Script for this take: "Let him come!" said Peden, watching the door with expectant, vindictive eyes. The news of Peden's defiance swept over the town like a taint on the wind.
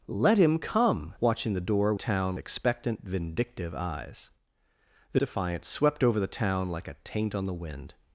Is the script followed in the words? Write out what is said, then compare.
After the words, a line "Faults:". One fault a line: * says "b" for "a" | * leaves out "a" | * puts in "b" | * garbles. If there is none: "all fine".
"Let him come!" watching the door town expectant, vindictive eyes. The defiance swept over the town like a taint on the wind.
Faults:
* leaves out "said Peden"
* says "town" for "with"
* leaves out "news of Peden's"